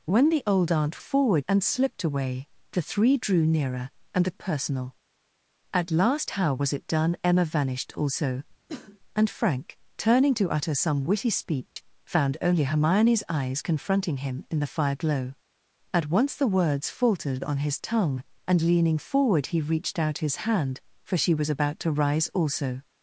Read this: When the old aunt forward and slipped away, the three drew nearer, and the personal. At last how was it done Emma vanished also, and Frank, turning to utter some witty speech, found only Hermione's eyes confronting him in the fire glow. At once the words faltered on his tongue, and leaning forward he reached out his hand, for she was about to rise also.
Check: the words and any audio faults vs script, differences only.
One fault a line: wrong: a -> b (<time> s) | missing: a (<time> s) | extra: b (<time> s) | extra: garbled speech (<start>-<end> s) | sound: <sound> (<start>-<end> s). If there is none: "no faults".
sound: cough (8.7-9.0 s)
sound: dropout (11.7-11.8 s)